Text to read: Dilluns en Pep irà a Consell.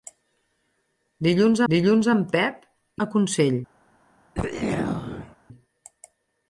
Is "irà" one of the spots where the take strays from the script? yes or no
yes